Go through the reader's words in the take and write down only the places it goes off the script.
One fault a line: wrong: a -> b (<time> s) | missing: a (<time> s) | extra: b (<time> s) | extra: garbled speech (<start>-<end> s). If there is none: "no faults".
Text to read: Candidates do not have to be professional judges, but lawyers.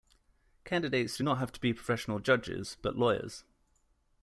no faults